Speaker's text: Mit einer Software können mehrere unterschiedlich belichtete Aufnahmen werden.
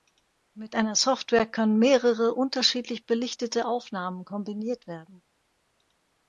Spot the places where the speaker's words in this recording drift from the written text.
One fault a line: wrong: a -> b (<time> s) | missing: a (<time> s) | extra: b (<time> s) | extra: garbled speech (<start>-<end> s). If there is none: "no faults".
extra: kombiniert (4.2 s)